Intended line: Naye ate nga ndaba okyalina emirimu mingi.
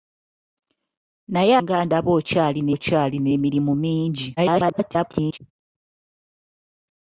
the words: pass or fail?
fail